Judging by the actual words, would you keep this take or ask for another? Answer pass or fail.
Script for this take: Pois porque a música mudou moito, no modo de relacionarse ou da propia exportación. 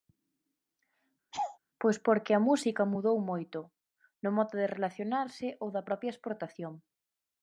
pass